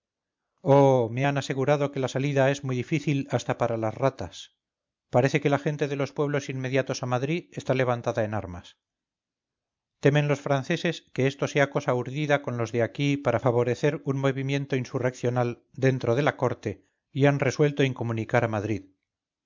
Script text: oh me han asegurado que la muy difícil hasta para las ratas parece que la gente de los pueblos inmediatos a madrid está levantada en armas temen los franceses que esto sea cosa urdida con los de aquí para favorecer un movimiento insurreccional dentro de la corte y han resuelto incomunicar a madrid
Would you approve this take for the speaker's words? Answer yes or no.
no